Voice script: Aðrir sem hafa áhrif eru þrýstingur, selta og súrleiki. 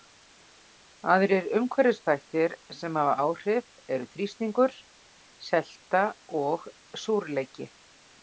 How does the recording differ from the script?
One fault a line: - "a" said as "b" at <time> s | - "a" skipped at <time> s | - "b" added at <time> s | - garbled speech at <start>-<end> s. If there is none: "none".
- "umhverfisþættir" added at 1.6 s